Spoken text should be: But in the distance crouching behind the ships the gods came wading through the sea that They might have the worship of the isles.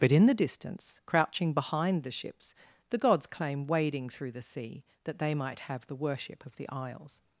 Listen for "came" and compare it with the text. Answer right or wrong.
wrong